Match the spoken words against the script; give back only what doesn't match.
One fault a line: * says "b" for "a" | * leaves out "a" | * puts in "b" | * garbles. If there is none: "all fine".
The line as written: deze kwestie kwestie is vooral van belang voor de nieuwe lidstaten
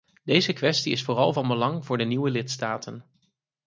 * leaves out "kwestie"